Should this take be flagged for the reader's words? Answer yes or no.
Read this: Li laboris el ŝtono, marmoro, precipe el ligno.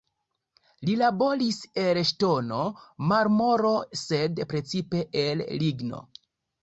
yes